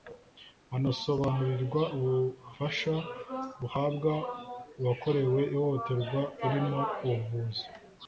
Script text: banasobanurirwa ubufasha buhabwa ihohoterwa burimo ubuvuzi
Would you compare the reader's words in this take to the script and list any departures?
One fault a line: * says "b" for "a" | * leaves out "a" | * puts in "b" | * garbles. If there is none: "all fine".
* puts in "uwakorewe"